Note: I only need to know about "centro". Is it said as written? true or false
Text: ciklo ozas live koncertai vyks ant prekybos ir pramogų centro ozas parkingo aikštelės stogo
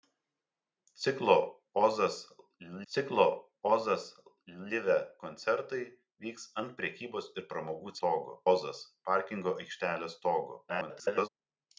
false